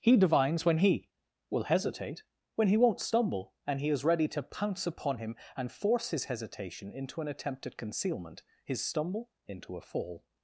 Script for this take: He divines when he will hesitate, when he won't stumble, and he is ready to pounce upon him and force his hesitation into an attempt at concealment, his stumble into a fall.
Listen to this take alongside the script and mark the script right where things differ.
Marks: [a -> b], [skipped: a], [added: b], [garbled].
He divines when he will hesitate, when he won't stumble, and he is ready to pounce upon him and force his hesitation into an attempt at concealment, his stumble into a fall.